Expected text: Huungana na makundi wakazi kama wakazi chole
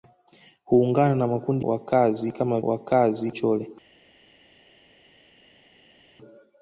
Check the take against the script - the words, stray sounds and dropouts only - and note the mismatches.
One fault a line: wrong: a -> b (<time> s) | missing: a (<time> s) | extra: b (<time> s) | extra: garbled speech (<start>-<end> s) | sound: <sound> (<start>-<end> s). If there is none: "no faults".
no faults